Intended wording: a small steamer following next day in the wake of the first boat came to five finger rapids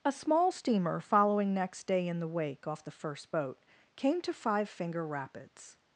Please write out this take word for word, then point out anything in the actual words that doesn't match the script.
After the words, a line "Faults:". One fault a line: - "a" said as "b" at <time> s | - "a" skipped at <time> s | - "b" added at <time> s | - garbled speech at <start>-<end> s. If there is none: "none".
a small steamer following next day in the wake off the first boat came to five finger rapids
Faults:
- "of" said as "off" at 2.7 s